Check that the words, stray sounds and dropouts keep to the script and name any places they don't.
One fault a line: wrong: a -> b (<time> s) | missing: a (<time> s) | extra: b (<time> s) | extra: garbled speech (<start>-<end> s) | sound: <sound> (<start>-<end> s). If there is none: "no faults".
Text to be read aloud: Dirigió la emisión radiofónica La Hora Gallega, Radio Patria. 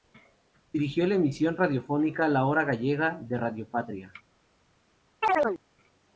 extra: de (3.2 s)
sound: chirp (5.2-5.6 s)